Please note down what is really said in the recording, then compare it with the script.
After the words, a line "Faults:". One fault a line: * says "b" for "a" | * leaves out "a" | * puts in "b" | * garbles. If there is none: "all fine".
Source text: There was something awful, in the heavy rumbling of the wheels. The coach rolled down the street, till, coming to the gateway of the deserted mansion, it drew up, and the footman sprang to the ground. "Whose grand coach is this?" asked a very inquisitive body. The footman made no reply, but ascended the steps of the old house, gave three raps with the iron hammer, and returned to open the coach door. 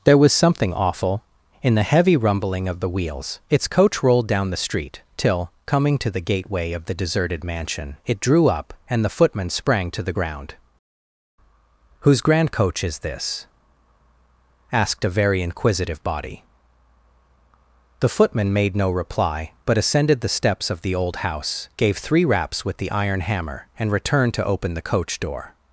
There was something awful, in the heavy rumbling of the wheels. Its coach rolled down the street, till, coming to the gateway of the deserted mansion, it drew up, and the footman sprang to the ground. "Whose grand coach is this?" asked a very inquisitive body. The footman made no reply, but ascended the steps of the old house, gave three raps with the iron hammer, and returned to open the coach door.
Faults:
* says "Its" for "The"